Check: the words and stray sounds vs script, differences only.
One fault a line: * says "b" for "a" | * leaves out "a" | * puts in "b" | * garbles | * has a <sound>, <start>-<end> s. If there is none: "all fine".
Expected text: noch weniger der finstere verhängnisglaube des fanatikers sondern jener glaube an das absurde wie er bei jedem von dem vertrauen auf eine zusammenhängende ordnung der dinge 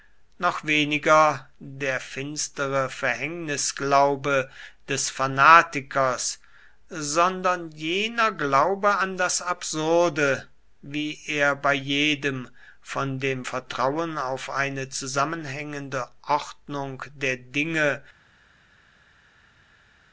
all fine